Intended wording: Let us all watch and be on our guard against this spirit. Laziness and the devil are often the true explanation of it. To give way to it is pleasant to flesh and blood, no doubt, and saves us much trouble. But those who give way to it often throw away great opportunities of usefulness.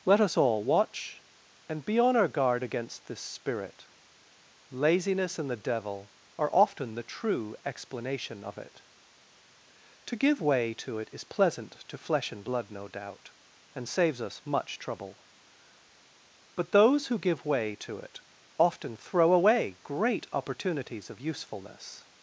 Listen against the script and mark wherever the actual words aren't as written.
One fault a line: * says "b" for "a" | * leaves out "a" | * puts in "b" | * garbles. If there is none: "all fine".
all fine